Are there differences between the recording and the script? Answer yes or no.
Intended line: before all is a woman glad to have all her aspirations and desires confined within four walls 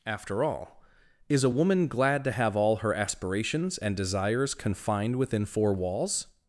yes